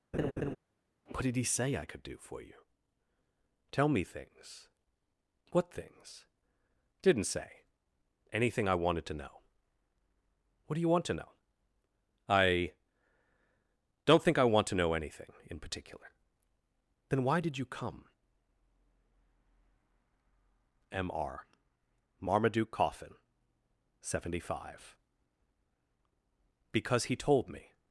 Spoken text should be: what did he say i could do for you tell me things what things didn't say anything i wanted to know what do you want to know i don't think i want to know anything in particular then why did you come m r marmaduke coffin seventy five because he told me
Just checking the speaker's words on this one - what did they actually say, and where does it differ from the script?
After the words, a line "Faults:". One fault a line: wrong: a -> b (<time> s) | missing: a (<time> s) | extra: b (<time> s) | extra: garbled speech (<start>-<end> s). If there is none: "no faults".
what did he say i could do for you tell me things what things didn't say anything i wanted to know what do you want to know i don't think i want to know anything in particular then why did you come m r marmaduke coffin seventy five because he told me
Faults:
no faults